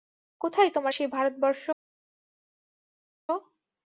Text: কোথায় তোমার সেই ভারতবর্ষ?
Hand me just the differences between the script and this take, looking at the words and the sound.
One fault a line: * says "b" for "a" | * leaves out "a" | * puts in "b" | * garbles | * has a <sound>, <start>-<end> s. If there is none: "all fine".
all fine